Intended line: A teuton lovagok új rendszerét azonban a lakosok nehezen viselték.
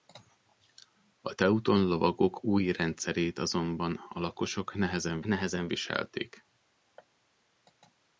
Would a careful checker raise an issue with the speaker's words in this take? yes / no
yes